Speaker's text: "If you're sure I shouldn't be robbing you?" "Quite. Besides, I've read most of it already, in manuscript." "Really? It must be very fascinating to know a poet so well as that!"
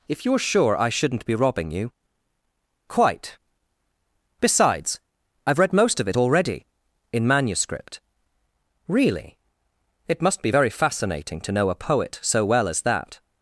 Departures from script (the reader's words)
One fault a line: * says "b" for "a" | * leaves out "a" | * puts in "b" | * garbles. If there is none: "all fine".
all fine